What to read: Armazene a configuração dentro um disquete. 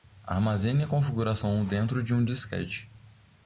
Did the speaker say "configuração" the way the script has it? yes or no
yes